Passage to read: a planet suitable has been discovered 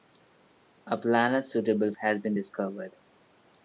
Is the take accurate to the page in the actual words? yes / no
yes